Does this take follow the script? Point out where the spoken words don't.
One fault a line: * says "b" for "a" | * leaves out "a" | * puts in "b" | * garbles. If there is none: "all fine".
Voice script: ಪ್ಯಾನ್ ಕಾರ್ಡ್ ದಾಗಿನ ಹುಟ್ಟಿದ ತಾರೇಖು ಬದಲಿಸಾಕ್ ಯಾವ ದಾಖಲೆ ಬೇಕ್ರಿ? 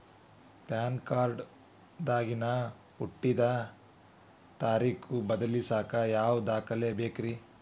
all fine